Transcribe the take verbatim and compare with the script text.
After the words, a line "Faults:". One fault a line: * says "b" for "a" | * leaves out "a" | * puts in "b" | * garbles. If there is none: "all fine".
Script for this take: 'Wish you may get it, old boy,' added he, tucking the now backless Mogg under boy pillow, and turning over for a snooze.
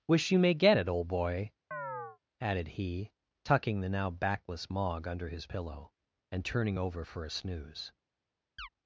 'Wish you may get it, old boy,' added he, tucking the now backless Mogg under his pillow, and turning over for a snooze.
Faults:
* says "his" for "boy"